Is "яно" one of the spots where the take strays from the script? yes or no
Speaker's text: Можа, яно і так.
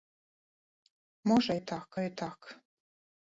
yes